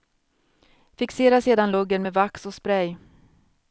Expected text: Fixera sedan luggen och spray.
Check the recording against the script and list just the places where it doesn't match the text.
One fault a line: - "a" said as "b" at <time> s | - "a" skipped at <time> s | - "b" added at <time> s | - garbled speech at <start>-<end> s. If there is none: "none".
- "med vax" added at 2.0 s